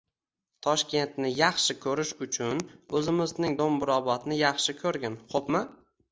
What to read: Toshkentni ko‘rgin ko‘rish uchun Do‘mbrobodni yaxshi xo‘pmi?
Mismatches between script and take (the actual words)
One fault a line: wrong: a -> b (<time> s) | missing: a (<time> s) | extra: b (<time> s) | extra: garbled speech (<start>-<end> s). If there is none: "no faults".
wrong: ko‘rgin -> yaxshi (1.4 s)
extra: o‘zimizning (3.0 s)
extra: ko‘rgin (4.8 s)